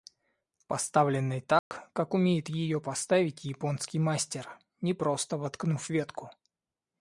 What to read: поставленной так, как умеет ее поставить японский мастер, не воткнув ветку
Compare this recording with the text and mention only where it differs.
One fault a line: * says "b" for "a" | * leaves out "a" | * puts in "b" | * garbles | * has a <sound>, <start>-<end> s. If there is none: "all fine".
* has a dropout, 1.6-1.7 s
* puts in "просто"